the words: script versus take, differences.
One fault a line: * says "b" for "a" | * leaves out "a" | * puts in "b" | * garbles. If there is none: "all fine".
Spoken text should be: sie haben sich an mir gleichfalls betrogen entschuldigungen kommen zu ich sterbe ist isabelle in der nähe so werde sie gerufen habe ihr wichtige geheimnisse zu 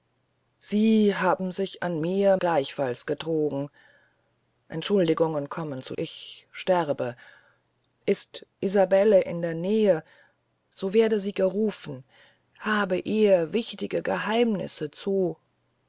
all fine